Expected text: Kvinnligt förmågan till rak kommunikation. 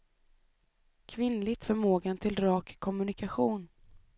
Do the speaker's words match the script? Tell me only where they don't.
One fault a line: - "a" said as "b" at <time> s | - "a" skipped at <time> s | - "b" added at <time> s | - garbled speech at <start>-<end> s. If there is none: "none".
none